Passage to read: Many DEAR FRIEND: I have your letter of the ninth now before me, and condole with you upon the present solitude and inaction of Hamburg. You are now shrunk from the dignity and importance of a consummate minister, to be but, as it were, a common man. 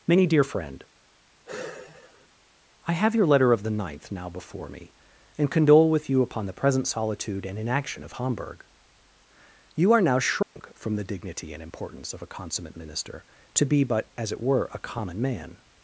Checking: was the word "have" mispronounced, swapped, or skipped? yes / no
no